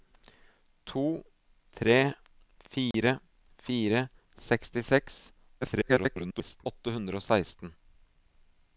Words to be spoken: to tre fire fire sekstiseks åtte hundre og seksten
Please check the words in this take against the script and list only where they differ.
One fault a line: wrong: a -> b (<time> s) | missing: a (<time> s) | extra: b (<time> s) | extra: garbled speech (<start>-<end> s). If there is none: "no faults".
extra: garbled speech (5.6-6.7 s)